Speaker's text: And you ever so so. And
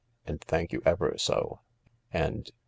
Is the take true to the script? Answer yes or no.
no